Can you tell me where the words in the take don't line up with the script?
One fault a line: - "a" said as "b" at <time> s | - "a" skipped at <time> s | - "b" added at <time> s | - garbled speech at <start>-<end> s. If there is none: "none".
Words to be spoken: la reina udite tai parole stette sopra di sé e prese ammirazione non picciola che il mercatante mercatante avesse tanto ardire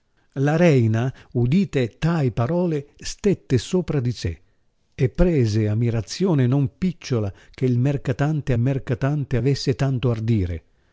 none